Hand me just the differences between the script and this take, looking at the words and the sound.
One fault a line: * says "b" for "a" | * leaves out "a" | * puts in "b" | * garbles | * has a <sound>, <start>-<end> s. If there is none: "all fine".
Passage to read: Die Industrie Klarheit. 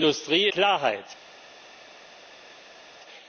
all fine